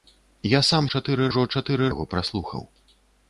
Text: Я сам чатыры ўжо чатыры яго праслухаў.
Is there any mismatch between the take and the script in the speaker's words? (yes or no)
no